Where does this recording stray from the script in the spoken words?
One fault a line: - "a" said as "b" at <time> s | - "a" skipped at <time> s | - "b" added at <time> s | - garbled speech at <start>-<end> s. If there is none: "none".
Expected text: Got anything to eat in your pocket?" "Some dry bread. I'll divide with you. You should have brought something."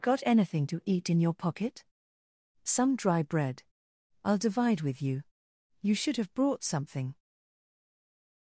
none